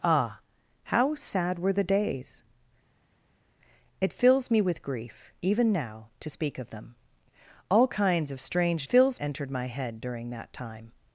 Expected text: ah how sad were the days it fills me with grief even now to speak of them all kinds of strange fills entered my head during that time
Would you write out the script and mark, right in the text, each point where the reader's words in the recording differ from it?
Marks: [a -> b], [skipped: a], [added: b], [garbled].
ah how sad were the days it fills me with grief even now to speak of them all kinds of strange fills entered my head during that time